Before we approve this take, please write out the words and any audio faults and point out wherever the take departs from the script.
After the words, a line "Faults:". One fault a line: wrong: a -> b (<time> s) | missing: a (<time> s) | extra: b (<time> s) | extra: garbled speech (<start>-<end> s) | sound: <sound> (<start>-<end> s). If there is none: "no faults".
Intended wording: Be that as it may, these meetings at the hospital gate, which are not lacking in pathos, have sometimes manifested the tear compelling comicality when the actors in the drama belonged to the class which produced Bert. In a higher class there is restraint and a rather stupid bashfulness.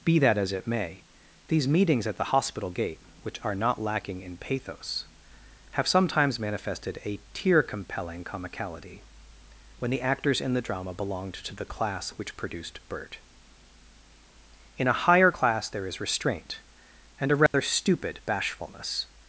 Be that as it may, these meetings at the hospital gate, which are not lacking in pathos, have sometimes manifested a tear compelling comicality when the actors in the drama belonged to the class which produced Bert. In a higher class there is restraint and a rather stupid bashfulness.
Faults:
wrong: the -> a (7.0 s)
sound: dropout (17.5-17.5 s)